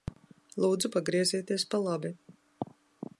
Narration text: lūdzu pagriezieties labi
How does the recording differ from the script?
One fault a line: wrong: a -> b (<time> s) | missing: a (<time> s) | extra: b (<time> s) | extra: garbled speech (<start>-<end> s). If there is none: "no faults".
extra: pa (1.7 s)